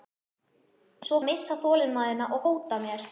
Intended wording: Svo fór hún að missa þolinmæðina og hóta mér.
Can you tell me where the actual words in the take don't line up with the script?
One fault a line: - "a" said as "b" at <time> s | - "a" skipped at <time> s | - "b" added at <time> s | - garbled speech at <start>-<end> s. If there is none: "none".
- "fór hún" skipped at 1.2 s